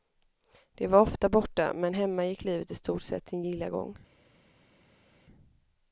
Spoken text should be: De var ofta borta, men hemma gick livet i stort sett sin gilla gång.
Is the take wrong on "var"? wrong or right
right